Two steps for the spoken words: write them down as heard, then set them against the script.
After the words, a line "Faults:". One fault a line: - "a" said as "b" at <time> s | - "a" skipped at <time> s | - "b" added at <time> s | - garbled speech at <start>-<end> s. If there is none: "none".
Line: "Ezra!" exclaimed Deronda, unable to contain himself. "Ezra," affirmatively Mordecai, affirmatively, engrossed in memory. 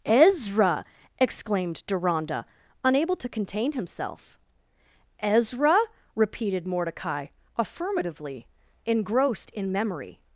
"Ezra!" exclaimed Deronda, unable to contain himself. "Ezra," repeated Mordecai, affirmatively, engrossed in memory.
Faults:
- "affirmatively" said as "repeated" at 6.2 s